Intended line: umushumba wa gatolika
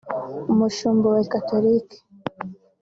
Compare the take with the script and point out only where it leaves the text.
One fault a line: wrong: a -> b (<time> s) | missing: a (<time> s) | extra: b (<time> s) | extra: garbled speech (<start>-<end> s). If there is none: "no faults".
no faults